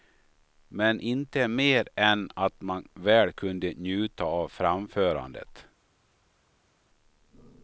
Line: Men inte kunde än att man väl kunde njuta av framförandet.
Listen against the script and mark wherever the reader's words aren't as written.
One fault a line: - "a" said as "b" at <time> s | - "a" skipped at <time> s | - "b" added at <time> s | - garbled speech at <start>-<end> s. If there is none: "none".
- "kunde" said as "mer" at 1.5 s